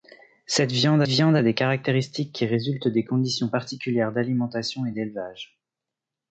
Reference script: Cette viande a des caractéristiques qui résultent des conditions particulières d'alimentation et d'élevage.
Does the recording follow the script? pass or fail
fail